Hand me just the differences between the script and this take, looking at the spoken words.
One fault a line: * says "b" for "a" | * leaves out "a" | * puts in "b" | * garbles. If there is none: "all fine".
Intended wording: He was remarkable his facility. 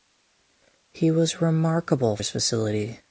all fine